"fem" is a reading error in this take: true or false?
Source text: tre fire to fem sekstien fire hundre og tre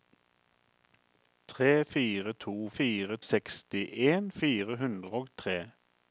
true